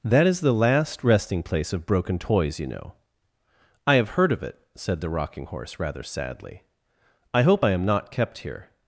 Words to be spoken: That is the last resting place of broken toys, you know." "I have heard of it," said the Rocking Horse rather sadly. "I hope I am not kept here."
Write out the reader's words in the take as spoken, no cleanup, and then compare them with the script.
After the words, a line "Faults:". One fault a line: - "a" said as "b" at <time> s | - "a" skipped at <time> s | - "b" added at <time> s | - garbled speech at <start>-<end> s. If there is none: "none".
That is the last resting place of broken toys, you know." "I have heard of it," said the Rocking Horse rather sadly. "I hope I am not kept here."
Faults:
none